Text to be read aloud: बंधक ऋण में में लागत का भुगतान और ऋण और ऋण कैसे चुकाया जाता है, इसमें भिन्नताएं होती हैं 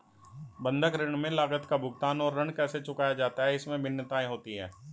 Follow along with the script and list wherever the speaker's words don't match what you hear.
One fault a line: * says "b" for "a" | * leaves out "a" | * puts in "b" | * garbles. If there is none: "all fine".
* leaves out "में"
* leaves out "और ऋण"